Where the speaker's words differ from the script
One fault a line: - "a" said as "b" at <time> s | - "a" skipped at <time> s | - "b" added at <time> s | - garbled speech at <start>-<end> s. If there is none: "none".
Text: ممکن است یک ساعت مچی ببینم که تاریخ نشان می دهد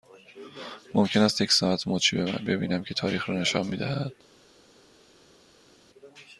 - "را" added at 3.3 s